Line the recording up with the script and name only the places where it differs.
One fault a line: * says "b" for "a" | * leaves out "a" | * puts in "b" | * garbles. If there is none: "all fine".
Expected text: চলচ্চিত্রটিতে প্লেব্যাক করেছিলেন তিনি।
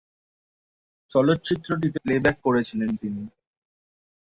all fine